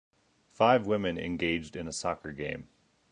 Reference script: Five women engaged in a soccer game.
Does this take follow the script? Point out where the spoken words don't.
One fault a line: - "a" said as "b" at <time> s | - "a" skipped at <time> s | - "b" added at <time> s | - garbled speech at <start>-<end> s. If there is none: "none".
none